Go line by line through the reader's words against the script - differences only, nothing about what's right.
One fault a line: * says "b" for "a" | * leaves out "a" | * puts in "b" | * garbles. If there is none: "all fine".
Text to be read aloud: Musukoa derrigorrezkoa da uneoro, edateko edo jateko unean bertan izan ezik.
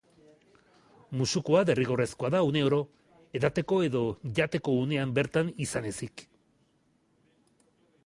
all fine